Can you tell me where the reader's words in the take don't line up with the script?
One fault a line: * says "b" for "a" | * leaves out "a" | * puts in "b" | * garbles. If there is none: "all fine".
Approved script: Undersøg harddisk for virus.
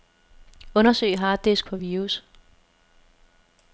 all fine